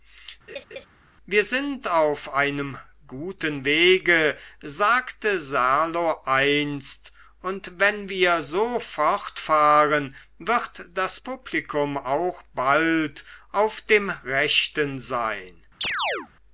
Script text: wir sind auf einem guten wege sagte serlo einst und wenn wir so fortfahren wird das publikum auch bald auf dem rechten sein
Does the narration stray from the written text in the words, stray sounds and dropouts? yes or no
yes